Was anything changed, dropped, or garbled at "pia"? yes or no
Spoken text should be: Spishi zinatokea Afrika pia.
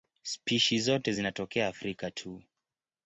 yes